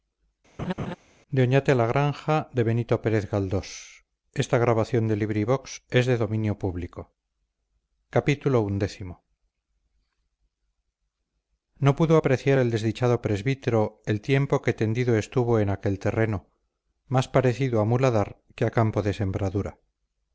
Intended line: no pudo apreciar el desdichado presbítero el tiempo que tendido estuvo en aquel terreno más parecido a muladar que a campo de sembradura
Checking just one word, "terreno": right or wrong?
right